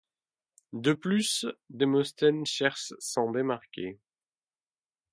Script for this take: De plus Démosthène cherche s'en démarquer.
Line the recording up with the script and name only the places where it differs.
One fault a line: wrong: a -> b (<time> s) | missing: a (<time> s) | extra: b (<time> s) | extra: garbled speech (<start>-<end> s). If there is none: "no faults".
no faults